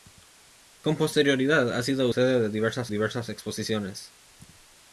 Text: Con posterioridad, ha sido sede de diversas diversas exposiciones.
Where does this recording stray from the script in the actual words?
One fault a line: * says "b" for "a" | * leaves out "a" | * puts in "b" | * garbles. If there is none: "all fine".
all fine